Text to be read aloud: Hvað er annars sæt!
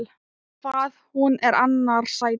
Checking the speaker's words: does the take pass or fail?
fail